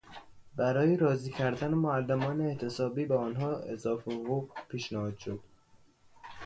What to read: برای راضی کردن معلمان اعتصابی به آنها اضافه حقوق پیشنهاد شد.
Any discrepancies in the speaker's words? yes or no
no